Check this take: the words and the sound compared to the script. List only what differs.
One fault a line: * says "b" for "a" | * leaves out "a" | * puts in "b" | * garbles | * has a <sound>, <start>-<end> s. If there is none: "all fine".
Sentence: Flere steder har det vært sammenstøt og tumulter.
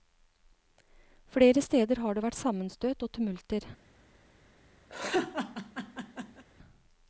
* has a laugh, 4.9-6.4 s